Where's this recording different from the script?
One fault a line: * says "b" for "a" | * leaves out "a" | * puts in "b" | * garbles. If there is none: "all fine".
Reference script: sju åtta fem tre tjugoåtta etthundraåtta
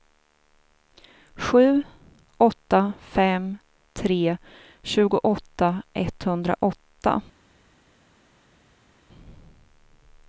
all fine